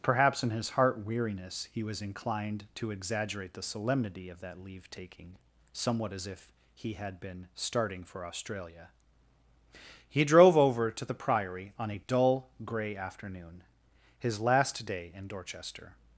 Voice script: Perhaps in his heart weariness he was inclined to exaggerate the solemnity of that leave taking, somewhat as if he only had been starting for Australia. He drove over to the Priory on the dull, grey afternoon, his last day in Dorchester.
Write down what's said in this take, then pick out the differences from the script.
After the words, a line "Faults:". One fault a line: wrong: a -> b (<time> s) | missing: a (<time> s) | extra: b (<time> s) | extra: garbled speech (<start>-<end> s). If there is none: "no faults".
Perhaps in his heart weariness he was inclined to exaggerate the solemnity of that leave taking, somewhat as if he had been starting for Australia. He drove over to the Priory on a dull, grey afternoon, his last day in Dorchester.
Faults:
missing: only (6.9 s)
wrong: the -> a (11.9 s)